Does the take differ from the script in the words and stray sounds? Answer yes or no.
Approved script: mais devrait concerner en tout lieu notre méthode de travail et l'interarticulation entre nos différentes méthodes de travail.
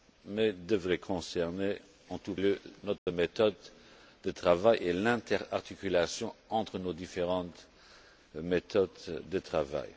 yes